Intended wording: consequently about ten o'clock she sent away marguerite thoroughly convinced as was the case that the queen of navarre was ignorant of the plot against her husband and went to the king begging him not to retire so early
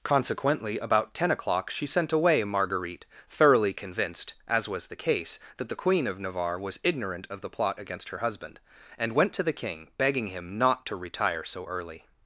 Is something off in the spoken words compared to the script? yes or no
no